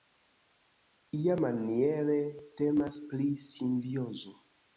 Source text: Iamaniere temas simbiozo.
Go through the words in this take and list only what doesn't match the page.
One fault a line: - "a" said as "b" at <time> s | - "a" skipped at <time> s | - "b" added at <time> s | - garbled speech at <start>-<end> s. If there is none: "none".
- "pri" added at 3.1 s